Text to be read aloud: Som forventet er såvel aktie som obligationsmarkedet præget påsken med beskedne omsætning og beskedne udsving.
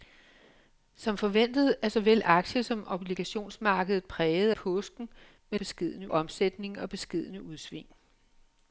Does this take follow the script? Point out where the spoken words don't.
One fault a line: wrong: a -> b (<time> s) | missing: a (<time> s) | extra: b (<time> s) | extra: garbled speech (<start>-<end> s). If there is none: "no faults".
no faults